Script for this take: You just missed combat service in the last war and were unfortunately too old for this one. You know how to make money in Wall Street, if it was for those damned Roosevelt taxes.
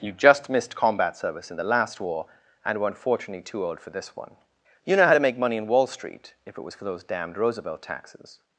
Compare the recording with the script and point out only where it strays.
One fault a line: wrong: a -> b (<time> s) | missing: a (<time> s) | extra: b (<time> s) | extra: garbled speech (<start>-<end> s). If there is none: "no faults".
no faults